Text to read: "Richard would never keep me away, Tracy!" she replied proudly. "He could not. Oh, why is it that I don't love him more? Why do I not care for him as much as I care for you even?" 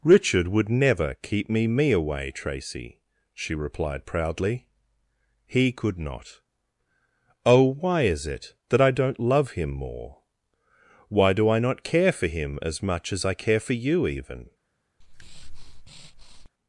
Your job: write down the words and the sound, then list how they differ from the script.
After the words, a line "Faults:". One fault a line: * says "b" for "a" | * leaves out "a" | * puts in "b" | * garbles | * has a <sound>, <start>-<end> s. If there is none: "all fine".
"Richard would never keep me me away, Tracy!" she replied proudly. "He could not. Oh, why is it that I don't love him more? Why do I not care for him as much as I care for you even?"
Faults:
* puts in "me"
* has a breath, 15.0-16.5 s